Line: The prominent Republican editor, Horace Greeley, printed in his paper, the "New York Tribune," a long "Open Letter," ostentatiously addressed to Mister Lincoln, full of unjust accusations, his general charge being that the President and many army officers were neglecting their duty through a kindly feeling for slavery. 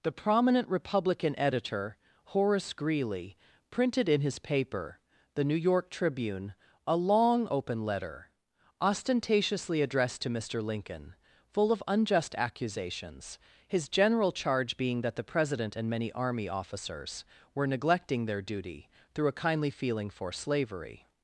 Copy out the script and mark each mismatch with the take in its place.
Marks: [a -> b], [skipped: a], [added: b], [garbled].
The prominent Republican editor, Horace Greeley, printed in his paper, the "New York Tribune," a long "Open Letter," ostentatiously addressed to Mister Lincoln, full of unjust accusations, his general charge being that the President and many army officers were neglecting their duty through a kindly feeling for slavery.